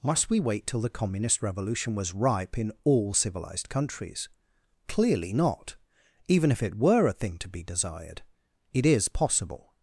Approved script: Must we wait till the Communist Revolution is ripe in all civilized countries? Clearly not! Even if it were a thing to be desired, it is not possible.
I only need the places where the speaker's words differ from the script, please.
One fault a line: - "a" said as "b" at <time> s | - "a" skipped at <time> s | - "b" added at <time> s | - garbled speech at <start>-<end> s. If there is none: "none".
- "is" said as "was" at 1.9 s
- "not" skipped at 9.1 s